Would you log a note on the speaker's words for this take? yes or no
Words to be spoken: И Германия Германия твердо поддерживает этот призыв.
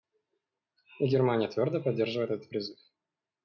yes